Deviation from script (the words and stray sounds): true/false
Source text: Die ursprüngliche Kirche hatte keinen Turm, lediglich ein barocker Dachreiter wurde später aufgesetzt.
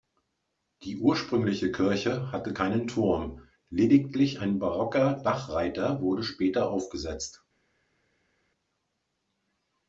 false